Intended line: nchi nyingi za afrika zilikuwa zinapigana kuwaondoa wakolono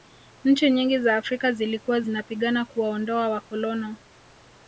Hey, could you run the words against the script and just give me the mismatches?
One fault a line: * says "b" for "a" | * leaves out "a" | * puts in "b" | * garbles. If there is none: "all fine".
all fine